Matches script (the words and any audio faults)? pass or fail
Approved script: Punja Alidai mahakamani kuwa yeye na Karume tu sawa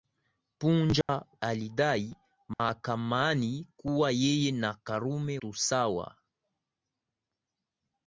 fail